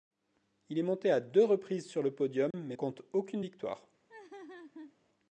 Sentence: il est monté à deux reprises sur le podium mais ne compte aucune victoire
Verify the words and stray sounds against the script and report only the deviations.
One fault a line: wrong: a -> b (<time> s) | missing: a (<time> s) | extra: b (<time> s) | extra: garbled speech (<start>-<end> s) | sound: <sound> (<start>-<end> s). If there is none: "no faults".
sound: dropout (2.5-2.5 s)
missing: ne (2.8 s)
sound: laugh (4.1-5.0 s)